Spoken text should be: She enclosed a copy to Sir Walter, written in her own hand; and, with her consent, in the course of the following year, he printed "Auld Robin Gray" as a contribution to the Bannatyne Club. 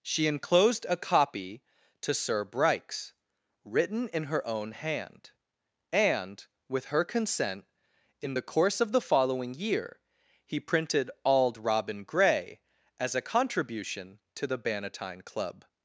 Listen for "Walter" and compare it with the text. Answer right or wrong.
wrong